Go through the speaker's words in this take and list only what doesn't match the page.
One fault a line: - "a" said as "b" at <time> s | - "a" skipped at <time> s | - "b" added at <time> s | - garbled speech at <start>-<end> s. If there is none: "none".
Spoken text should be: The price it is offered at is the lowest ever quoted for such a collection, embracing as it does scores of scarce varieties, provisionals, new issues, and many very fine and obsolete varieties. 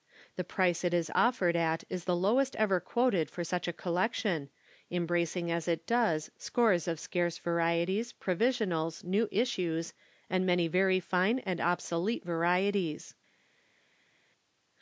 none